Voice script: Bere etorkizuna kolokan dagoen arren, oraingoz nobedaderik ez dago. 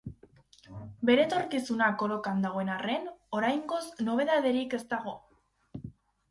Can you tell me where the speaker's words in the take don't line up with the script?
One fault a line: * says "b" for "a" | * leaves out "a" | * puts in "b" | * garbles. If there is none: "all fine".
all fine